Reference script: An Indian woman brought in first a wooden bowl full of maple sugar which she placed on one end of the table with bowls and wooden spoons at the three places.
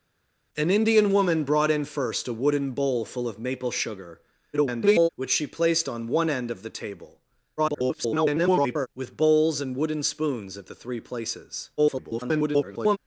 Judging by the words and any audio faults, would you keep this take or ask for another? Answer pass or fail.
fail